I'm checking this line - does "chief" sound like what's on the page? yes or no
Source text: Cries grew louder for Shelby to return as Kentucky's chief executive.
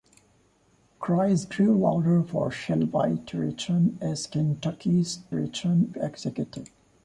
no